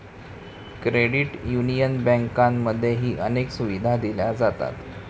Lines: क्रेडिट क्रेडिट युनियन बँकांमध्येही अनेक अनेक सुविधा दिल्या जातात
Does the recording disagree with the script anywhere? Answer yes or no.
yes